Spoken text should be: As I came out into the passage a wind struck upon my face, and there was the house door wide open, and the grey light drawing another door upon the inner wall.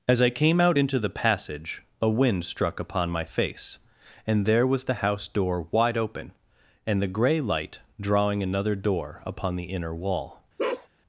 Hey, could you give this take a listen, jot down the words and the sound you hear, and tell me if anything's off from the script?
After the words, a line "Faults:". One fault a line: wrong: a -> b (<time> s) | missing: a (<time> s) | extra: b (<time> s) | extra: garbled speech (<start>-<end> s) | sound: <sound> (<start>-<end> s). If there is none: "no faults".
As I came out into the passage a wind struck upon my face, and there was the house door wide open, and the grey light drawing another door upon the inner wall.
Faults:
sound: bark (10.6-10.9 s)